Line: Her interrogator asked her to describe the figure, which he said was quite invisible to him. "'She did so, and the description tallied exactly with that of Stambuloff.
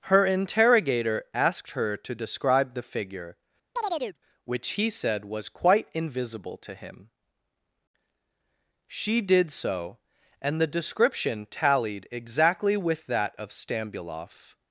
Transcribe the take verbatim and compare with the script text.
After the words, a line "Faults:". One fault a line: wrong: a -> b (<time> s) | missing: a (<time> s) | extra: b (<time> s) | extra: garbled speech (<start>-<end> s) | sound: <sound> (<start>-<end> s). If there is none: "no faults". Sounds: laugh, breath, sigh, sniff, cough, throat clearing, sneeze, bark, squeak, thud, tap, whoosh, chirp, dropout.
Her interrogator asked her to describe the figure, which he said was quite invisible to him. "'She did so, and the description tallied exactly with that of Stambuloff.
Faults:
sound: chirp (3.8-4.2 s)